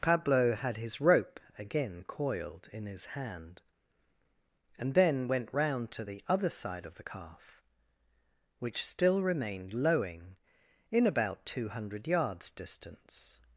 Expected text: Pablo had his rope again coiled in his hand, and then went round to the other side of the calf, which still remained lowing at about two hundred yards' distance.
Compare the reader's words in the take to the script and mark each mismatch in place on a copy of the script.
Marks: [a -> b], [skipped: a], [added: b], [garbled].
Pablo had his rope again coiled in his hand, and then went round to the other side of the calf, which still remained lowing [at -> in] about two hundred yards' distance.